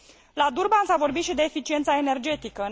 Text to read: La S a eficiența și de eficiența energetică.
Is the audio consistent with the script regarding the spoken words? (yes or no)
no